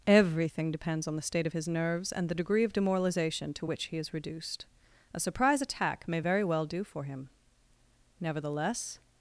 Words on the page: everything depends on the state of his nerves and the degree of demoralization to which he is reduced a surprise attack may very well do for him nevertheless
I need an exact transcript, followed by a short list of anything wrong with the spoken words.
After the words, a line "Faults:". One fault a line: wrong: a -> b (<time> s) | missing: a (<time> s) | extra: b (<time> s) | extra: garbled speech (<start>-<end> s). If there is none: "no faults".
everything depends on the state of his nerves and the degree of demoralization to which he is reduced a surprise attack may very well do for him nevertheless
Faults:
no faults